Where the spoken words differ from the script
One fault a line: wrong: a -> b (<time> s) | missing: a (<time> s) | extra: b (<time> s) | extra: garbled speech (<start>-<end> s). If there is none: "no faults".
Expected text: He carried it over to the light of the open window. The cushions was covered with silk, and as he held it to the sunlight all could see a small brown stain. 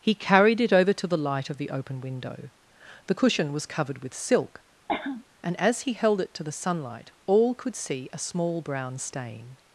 wrong: cushions -> cushion (3.1 s)